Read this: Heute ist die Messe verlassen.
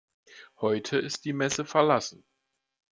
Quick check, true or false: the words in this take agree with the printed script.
true